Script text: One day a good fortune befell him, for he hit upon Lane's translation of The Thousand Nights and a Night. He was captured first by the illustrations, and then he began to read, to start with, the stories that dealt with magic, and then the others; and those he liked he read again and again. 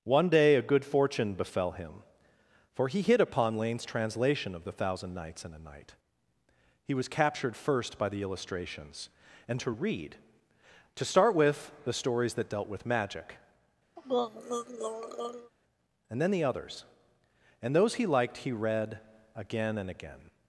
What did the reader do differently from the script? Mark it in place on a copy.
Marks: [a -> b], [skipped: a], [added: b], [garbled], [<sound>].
One day a good fortune befell him, for he hit upon Lane's translation of The Thousand Nights and a Night. He was captured first by the illustrations, and [skipped: then he began] to read, to start with, the stories that dealt with magic, [throat clearing] and then the others; and those he liked he read again and again.